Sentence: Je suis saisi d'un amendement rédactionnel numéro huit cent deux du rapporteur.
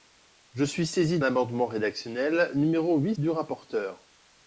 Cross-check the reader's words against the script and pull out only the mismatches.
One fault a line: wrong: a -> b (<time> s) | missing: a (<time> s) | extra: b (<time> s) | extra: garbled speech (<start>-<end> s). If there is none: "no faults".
missing: d'un (1.2 s)
missing: cent deux (3.2 s)